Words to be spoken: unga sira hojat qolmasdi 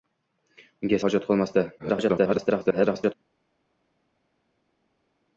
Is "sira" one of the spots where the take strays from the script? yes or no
yes